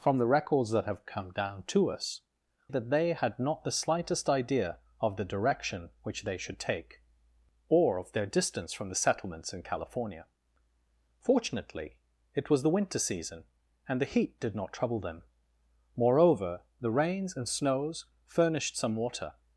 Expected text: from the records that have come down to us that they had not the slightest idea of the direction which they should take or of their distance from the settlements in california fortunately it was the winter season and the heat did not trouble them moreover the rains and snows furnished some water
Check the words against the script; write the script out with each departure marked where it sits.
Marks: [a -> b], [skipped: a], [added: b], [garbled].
from the records that have come down to us that they had not the slightest idea of the direction which they should take or of their distance from the settlements in california fortunately it was the winter season and the heat did not trouble them moreover the rains and snows furnished some water